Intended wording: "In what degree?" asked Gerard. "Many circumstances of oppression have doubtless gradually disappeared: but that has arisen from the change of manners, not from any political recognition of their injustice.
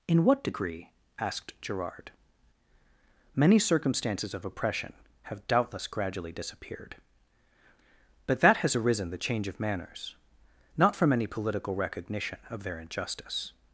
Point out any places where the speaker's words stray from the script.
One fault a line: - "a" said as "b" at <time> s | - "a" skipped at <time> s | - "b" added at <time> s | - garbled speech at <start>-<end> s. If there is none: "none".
- "from" skipped at 9.1 s